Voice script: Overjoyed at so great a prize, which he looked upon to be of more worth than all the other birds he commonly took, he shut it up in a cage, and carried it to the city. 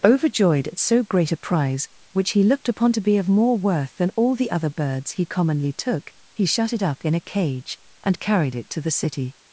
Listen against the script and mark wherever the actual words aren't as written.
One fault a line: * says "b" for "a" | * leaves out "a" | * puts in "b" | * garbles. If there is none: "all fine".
all fine